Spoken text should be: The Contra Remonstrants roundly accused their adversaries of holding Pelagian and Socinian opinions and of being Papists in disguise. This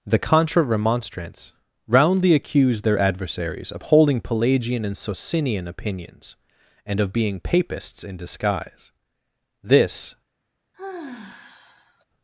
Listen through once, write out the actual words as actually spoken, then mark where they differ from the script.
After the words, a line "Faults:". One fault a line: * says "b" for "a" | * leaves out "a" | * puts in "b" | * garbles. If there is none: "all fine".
The Contra Remonstrants roundly accused their adversaries of holding Pelagian and Socinian opinions and of being Papists in disguise. This
Faults:
all fine